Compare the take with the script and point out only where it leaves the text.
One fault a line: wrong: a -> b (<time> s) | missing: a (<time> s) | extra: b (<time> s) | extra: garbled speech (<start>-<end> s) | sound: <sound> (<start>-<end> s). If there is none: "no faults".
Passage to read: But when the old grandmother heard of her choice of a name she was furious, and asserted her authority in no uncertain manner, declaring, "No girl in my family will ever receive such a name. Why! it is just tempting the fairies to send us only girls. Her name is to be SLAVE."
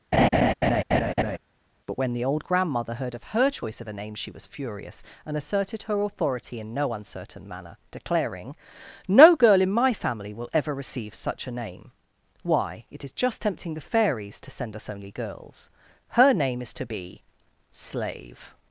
sound: laugh (0.1-1.4 s)